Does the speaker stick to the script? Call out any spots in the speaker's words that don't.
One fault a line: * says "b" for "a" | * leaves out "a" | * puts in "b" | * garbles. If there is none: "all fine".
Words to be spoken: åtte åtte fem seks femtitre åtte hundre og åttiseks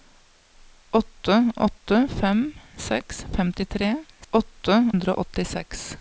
all fine